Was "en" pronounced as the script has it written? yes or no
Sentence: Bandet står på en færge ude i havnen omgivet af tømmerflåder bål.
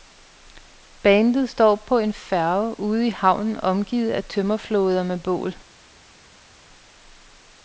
yes